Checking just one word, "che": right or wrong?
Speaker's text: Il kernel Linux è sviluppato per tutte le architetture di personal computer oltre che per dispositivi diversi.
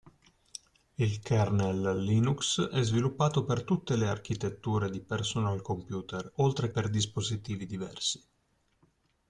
wrong